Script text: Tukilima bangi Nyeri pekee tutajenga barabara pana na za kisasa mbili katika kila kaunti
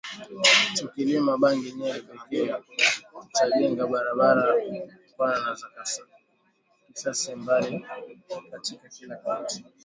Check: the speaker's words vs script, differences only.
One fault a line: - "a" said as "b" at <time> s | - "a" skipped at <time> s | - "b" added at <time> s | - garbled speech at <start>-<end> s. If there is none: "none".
none